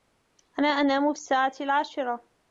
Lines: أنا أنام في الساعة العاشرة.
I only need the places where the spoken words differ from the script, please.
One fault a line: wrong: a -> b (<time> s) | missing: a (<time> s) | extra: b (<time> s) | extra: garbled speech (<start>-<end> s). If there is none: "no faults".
no faults